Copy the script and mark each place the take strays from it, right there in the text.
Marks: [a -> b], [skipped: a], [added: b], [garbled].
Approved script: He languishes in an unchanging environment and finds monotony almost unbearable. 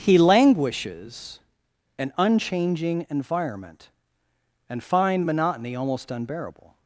He languishes [skipped: in] an unchanging environment and [finds -> find] monotony almost unbearable.